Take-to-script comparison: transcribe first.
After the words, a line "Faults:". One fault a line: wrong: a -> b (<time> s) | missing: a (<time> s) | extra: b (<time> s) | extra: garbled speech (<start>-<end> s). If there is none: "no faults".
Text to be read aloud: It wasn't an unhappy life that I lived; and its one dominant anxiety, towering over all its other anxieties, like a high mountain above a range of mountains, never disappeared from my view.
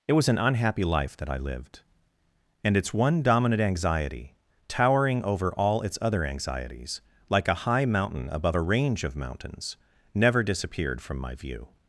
It was an unhappy life that I lived; and its one dominant anxiety, towering over all its other anxieties, like a high mountain above a range of mountains, never disappeared from my view.
Faults:
wrong: wasn't -> was (0.1 s)